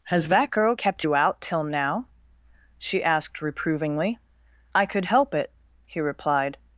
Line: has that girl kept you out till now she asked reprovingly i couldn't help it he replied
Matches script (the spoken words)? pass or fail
fail